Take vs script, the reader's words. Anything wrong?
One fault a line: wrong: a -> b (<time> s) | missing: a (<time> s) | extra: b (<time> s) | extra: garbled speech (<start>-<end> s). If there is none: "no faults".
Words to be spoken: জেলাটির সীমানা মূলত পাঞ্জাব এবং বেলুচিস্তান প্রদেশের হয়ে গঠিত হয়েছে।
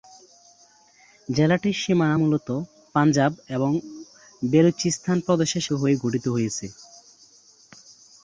no faults